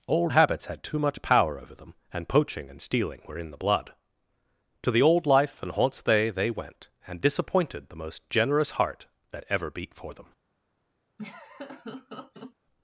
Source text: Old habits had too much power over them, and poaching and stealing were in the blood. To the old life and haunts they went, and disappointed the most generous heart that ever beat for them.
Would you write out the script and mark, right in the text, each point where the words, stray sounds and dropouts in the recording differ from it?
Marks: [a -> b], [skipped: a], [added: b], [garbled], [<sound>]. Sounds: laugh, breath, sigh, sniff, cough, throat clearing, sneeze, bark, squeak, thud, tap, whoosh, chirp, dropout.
Old habits had too much power over them, and poaching and stealing were in the blood. To the old life and haunts they [added: they] went, and disappointed the most generous heart that ever beat for them. [laugh]